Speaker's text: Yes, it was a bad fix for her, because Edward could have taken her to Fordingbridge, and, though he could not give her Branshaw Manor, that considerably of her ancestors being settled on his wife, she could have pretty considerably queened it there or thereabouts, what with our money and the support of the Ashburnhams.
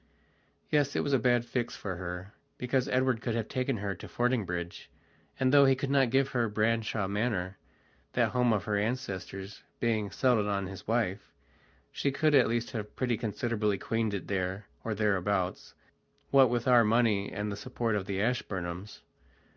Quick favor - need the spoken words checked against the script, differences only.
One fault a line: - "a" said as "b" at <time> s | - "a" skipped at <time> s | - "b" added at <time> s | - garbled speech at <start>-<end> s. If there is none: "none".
- "considerably" said as "home" at 8.3 s
- "at least" added at 12.3 s